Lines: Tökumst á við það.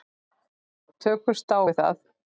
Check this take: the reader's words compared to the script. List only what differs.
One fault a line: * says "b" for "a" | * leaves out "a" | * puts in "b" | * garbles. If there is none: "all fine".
all fine